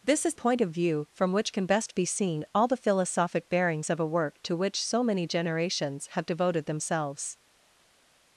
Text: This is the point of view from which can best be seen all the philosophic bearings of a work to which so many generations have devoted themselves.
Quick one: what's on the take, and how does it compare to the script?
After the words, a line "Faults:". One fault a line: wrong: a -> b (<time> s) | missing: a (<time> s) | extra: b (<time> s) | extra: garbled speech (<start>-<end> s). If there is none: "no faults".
This is point of view from which can best be seen all the philosophic bearings of a work to which so many generations have devoted themselves.
Faults:
missing: the (0.3 s)